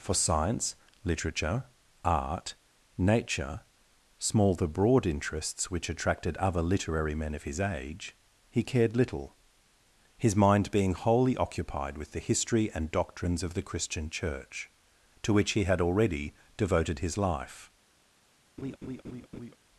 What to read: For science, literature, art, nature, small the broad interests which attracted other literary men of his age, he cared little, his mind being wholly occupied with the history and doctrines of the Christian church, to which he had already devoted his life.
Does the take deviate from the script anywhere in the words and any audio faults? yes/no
yes